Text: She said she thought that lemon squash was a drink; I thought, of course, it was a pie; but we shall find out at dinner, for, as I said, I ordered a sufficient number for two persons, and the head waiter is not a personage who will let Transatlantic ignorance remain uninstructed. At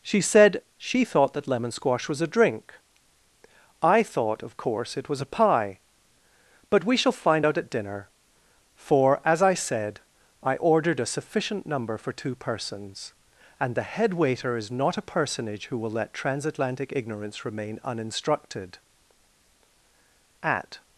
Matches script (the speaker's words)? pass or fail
pass